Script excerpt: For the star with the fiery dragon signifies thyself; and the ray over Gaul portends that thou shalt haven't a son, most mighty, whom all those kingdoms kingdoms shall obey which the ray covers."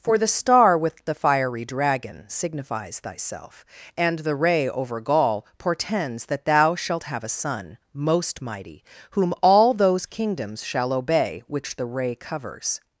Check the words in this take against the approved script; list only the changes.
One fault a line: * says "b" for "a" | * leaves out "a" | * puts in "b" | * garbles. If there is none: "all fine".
* says "have" for "haven't"
* leaves out "kingdoms"